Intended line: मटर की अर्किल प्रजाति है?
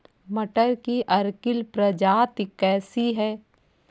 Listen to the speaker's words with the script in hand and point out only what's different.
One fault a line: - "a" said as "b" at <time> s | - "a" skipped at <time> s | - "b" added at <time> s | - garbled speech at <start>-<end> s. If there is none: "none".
- "कैसी" added at 2.6 s